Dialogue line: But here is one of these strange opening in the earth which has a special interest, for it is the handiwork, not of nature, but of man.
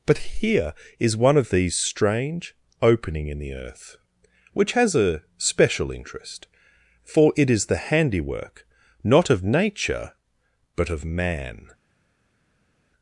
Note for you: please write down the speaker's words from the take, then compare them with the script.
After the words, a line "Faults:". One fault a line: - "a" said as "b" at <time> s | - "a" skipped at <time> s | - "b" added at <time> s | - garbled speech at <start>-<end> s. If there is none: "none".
But here is one of these strange opening in the earth which has a special interest, for it is the handiwork, not of nature, but of man.
Faults:
none